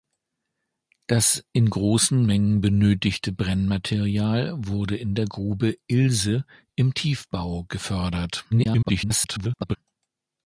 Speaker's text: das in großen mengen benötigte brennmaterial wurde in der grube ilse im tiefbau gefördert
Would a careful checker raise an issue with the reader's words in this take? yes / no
yes